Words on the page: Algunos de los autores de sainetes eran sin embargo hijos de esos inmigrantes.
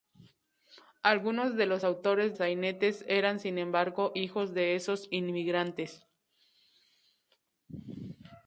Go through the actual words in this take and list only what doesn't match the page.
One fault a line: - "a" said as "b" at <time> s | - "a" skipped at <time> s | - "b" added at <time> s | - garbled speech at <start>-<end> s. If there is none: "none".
- "de" skipped at 2.4 s